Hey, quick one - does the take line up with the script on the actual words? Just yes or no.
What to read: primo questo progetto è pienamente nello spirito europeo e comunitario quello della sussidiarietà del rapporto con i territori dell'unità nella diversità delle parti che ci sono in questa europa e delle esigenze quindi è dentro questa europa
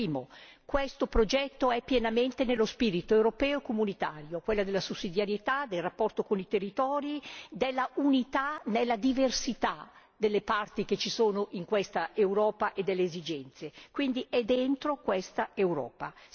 yes